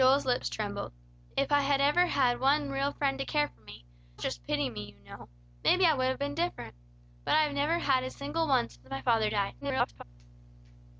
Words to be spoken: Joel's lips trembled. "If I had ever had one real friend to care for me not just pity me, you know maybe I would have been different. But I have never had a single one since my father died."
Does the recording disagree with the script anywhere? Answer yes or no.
yes